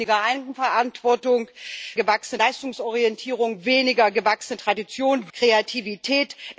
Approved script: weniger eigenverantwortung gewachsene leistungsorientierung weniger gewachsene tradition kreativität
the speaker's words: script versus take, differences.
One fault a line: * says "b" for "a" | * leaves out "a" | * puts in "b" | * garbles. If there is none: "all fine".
all fine